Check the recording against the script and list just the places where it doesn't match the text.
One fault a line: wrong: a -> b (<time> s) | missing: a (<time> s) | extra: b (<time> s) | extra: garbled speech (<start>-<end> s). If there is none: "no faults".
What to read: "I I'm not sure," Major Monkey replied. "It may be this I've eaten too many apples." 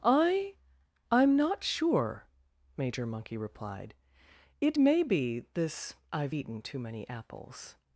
no faults